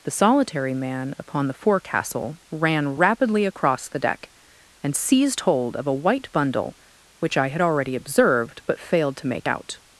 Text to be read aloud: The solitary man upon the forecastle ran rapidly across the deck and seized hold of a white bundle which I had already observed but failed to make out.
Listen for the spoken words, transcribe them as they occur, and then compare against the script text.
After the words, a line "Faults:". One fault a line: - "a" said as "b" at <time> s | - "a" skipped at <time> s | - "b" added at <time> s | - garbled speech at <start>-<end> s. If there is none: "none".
The solitary man upon the forecastle ran rapidly across the deck and seized hold of a white bundle which I had already observed but failed to make out.
Faults:
none